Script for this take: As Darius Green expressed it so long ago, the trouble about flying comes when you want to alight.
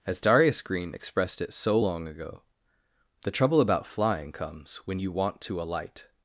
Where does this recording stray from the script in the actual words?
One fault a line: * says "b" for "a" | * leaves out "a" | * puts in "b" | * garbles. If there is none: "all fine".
all fine